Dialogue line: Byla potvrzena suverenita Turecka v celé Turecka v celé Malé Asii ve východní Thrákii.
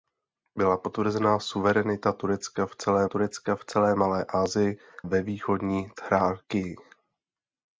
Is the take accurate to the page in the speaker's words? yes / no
yes